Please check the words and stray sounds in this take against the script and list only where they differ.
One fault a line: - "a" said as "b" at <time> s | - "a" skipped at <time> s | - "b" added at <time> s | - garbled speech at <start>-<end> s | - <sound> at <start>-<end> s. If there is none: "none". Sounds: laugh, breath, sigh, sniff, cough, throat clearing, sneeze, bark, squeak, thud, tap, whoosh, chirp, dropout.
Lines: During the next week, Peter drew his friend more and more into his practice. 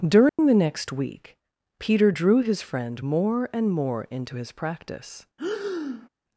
- dropout at 0.3-0.4 s
- breath at 5.4-6.1 s